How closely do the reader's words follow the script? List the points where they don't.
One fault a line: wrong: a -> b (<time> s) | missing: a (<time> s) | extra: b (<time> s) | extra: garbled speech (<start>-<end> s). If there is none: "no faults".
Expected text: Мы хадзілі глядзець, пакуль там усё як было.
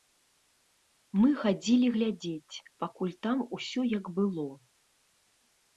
no faults